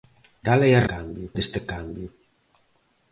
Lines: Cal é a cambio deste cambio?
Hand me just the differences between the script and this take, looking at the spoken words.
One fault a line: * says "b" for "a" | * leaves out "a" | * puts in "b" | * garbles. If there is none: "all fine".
all fine